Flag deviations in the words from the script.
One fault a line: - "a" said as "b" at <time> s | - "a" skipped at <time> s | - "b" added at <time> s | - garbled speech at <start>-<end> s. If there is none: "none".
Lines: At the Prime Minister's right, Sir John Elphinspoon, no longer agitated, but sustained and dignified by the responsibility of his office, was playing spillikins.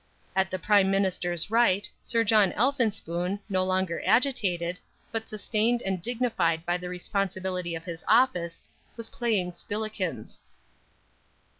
none